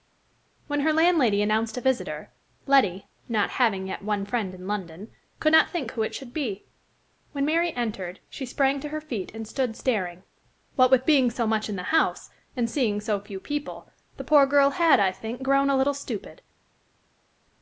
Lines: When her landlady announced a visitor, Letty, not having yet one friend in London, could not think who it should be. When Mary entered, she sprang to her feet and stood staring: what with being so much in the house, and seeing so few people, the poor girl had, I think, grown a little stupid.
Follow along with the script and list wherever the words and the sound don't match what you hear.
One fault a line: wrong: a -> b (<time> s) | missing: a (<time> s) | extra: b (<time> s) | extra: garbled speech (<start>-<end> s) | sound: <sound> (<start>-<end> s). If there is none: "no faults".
no faults